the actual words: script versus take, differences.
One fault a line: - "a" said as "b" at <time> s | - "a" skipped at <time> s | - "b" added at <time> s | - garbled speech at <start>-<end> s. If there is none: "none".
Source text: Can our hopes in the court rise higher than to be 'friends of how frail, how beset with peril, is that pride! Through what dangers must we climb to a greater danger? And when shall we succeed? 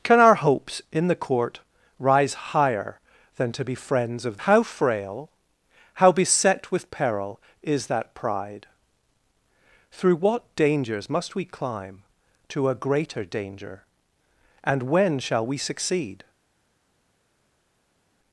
none